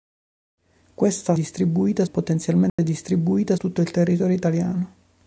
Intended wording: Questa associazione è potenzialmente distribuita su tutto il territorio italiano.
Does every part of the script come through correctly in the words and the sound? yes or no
no